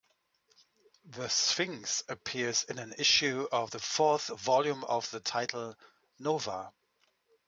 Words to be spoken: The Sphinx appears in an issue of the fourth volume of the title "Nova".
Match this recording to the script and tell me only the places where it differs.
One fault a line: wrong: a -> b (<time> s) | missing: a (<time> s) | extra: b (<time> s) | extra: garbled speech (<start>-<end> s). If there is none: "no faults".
no faults